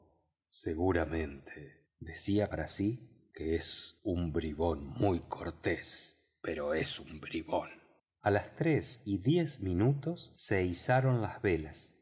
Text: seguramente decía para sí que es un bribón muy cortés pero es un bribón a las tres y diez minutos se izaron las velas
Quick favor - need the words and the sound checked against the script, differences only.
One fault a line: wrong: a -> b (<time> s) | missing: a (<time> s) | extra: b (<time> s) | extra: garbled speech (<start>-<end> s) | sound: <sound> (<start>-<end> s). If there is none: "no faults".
no faults